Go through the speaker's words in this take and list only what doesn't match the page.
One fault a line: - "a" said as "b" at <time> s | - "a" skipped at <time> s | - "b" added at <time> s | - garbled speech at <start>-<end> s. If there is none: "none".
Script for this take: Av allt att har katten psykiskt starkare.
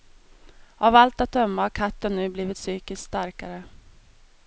- "döma" added at 1.3 s
- "nu blivit" added at 2.1 s